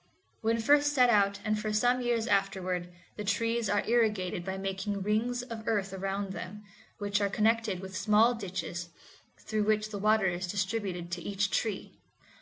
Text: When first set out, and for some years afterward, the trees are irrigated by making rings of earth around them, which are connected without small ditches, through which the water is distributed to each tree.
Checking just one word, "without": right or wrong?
wrong